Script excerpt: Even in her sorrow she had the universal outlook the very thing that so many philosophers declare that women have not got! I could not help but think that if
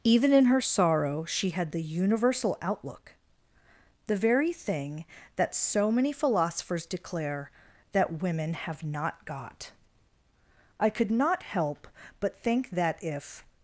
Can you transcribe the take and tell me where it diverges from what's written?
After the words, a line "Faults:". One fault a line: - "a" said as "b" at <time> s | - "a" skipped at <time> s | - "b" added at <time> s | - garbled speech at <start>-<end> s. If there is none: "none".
Even in her sorrow she had the universal outlook the very thing that so many philosophers declare that women have not got! I could not help but think that if
Faults:
none